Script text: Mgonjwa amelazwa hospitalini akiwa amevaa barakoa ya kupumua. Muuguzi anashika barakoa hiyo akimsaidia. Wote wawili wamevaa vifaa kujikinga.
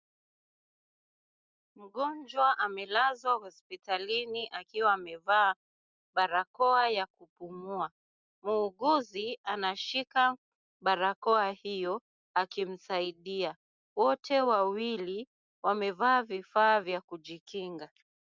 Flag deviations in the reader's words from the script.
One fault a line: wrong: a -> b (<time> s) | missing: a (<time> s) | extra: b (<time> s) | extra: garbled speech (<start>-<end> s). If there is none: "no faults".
extra: vya (16.8 s)